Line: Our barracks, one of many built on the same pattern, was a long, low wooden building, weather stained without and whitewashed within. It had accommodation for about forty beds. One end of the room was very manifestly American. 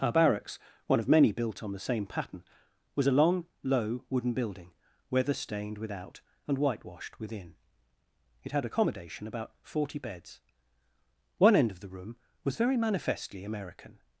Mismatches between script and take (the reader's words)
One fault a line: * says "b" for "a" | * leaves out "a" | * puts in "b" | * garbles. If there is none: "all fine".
* leaves out "for"